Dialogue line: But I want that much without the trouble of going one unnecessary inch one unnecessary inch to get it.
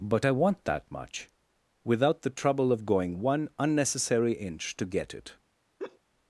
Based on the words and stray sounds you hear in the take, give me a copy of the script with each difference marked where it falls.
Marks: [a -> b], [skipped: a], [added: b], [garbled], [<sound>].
But I want that much without the trouble of going one unnecessary inch [skipped: one unnecessary inch] to get it. [laugh]